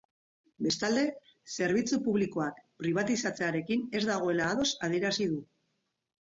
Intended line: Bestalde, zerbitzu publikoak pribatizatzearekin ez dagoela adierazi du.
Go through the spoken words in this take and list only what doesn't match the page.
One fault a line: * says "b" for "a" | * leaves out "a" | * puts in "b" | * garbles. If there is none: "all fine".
* puts in "ados"